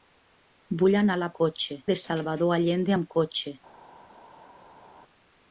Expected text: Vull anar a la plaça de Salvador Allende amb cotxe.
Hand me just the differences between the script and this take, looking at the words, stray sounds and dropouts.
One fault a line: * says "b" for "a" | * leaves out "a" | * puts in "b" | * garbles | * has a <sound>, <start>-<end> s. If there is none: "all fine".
* says "cotxe" for "plaça"